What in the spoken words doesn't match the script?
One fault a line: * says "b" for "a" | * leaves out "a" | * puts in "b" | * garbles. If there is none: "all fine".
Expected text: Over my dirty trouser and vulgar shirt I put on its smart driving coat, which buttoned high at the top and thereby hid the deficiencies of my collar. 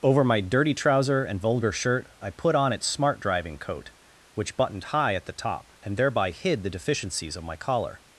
all fine